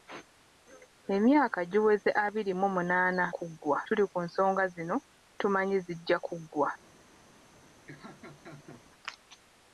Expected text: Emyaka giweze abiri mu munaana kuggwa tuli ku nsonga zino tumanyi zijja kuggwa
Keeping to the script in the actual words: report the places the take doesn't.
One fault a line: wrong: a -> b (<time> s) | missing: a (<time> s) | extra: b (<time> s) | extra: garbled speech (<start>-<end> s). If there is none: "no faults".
no faults